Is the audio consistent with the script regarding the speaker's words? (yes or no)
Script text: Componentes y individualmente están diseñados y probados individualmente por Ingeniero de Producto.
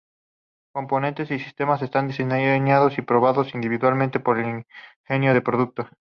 no